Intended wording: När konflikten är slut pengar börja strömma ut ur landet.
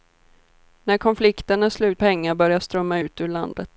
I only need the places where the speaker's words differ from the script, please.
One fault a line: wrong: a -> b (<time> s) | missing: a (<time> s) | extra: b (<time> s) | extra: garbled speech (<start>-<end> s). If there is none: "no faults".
no faults